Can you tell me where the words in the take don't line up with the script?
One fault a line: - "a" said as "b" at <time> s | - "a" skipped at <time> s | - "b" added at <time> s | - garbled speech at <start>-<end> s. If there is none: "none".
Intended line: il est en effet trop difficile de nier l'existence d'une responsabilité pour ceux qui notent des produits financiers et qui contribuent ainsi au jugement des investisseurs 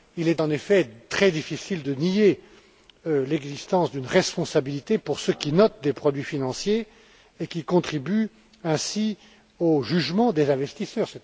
- "trop" said as "très" at 1.1 s